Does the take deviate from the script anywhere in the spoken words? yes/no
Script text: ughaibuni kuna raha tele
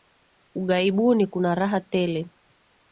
no